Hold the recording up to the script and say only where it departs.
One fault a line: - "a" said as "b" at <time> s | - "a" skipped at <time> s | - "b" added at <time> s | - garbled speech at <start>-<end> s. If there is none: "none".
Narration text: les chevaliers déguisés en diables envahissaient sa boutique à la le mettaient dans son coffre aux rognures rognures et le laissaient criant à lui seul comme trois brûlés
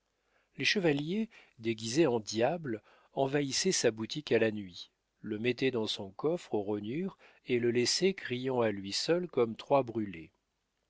- "nuit" added at 4.5 s
- "rognures" skipped at 7.2 s